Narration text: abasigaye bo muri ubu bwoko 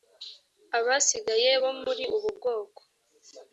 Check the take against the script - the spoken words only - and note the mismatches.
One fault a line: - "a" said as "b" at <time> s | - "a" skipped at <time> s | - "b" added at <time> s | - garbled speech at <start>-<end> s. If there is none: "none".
none